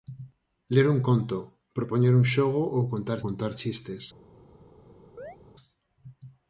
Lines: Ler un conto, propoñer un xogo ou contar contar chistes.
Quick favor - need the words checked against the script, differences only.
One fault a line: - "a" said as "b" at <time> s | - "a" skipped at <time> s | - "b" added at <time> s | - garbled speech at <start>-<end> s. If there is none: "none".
none